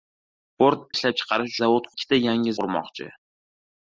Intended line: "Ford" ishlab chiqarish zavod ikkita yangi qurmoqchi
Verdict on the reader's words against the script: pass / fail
pass